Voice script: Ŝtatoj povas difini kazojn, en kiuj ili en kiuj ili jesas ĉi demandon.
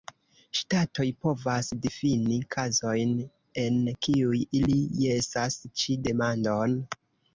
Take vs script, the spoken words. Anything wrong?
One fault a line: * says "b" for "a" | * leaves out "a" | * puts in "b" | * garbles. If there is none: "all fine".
* leaves out "en kiuj ili"